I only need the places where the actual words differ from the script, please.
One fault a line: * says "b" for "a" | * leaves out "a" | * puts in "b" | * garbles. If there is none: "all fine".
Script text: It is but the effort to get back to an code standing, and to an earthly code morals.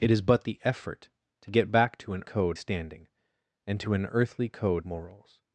all fine